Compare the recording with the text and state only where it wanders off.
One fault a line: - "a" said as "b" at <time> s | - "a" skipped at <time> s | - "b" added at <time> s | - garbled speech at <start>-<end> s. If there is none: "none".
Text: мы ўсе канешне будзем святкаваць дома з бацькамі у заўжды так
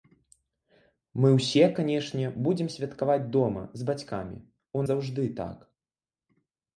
none